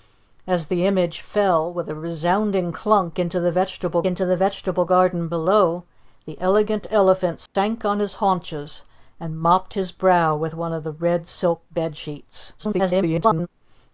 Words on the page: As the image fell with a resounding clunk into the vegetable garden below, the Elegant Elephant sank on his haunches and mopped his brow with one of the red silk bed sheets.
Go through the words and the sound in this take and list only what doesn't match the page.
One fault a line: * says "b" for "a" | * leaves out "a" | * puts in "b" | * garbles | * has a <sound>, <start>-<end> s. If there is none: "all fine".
* puts in "into the vegetable"
* has a dropout, 7.5-7.6 s
* garbles